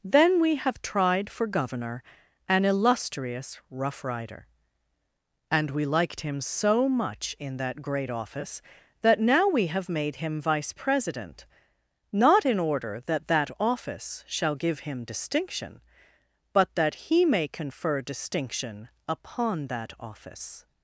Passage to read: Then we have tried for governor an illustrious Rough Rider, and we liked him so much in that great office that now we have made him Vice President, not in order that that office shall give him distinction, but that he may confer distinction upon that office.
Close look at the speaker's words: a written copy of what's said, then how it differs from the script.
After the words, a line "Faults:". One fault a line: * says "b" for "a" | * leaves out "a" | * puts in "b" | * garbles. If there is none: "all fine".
Then we have tried for governor an illustrious Rough Rider, and we liked him so much in that great office that now we have made him Vice President, not in order that that office shall give him distinction, but that he may confer distinction upon that office.
Faults:
all fine